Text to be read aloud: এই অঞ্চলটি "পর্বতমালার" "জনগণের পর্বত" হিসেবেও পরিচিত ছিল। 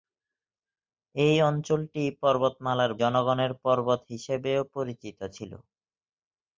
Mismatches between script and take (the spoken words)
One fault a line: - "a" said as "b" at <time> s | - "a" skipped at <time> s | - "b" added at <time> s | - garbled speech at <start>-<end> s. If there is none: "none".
none